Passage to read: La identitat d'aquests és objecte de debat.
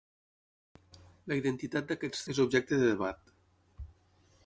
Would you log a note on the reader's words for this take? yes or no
no